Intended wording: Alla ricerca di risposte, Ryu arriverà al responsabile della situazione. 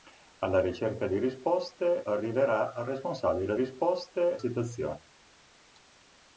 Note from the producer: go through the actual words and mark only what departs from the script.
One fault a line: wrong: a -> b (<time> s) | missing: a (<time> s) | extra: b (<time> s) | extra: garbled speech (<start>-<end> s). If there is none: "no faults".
missing: Ryu (2.0 s)
wrong: della -> risposte (3.5 s)